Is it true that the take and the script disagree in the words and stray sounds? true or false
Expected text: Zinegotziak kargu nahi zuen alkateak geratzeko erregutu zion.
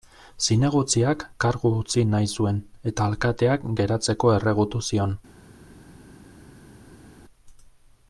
true